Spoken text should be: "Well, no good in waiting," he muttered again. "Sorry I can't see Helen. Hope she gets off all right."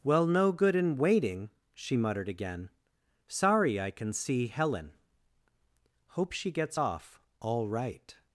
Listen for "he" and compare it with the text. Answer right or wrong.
wrong